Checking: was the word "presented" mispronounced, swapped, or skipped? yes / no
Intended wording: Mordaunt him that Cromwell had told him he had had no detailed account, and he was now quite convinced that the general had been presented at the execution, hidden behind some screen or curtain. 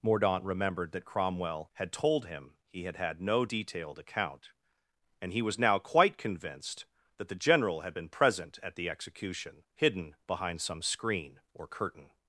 yes